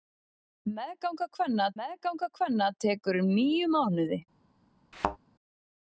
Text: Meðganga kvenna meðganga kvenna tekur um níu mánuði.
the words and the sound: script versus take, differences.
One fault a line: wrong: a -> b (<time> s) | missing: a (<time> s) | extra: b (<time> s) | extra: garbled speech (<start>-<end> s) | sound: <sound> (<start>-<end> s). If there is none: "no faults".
sound: thud (4.9-5.2 s)